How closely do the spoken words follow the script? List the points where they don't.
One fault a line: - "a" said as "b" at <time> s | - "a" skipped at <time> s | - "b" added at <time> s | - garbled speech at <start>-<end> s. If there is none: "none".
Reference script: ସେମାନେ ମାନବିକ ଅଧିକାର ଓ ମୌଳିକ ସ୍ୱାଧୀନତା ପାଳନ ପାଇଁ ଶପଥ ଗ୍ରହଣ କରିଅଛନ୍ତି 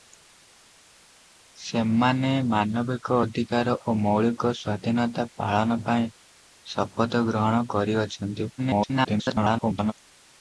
- garbled speech at 8.6-9.9 s